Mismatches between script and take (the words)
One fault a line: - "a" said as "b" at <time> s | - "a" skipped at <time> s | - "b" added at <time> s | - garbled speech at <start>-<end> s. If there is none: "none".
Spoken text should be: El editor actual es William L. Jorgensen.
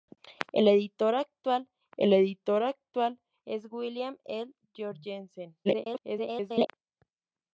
- "el editor actual" added at 2.0 s
- garbled speech at 5.6-6.7 s